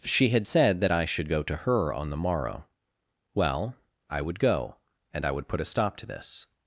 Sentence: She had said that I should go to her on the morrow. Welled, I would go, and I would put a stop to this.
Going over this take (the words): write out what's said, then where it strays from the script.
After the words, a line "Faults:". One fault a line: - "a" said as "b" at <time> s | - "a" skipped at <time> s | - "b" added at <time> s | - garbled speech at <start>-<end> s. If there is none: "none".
She had said that I should go to her on the morrow. Well, I would go, and I would put a stop to this.
Faults:
- "Welled" said as "Well" at 3.3 s